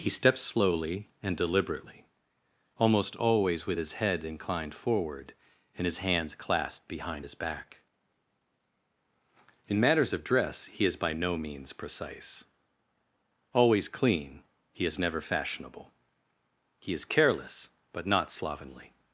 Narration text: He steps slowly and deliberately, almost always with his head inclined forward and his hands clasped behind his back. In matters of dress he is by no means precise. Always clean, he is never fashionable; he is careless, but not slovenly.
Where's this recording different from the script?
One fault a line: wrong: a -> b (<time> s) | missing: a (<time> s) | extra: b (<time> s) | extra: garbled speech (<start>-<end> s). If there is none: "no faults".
no faults